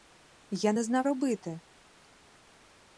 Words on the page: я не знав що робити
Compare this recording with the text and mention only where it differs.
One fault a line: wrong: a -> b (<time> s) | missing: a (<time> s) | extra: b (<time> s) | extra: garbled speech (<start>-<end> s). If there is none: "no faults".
missing: що (1.1 s)